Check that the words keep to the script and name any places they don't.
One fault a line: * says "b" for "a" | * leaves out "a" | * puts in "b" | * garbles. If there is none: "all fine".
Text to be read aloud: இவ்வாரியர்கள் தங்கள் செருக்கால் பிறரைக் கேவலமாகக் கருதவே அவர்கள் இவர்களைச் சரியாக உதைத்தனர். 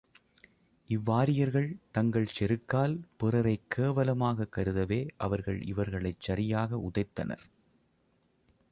all fine